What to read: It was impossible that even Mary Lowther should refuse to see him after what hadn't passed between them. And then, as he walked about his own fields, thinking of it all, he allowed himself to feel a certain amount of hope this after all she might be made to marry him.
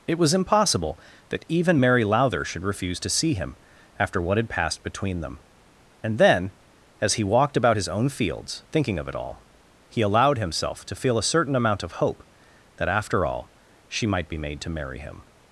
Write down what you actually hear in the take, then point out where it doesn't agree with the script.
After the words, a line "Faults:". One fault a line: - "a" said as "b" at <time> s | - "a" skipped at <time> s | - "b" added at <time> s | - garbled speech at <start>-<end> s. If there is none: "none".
It was impossible that even Mary Lowther should refuse to see him after what had passed between them. And then, as he walked about his own fields, thinking of it all, he allowed himself to feel a certain amount of hope that after all she might be made to marry him.
Faults:
- "hadn't" said as "had" at 4.4 s
- "this" said as "that" at 12.8 s